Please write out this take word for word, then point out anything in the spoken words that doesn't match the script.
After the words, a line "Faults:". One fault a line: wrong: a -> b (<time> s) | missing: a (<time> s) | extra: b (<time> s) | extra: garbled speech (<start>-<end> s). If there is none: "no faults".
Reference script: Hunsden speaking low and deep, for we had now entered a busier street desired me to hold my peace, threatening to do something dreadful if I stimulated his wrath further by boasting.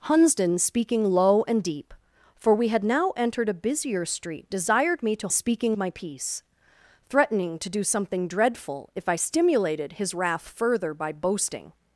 Hunsden speaking low and deep, for we had now entered a busier street desired me to speaking my peace, threatening to do something dreadful if I stimulated his wrath further by boasting.
Faults:
wrong: hold -> speaking (5.3 s)